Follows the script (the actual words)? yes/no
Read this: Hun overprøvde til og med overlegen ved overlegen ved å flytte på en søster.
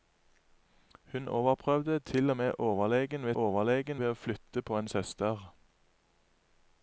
yes